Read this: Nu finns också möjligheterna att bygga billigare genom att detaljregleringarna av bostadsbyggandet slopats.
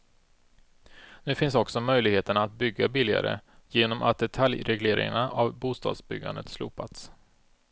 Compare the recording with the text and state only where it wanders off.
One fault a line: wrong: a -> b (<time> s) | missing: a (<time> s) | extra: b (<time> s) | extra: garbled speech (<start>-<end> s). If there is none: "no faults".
no faults